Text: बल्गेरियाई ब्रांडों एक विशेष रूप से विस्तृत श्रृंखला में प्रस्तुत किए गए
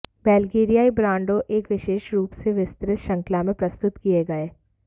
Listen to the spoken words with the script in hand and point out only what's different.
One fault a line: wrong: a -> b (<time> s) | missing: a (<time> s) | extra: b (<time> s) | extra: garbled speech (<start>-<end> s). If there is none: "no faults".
no faults